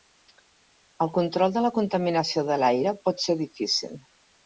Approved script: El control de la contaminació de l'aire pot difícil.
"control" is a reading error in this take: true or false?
false